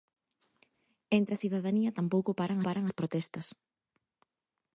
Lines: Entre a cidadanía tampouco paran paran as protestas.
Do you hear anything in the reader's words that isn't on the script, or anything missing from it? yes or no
no